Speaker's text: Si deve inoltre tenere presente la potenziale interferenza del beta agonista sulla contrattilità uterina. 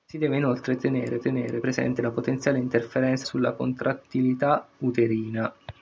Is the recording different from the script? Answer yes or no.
yes